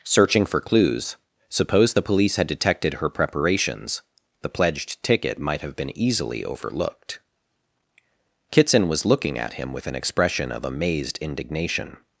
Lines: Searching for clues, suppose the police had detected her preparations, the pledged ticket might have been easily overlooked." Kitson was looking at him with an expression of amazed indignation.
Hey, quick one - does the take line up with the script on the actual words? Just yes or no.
yes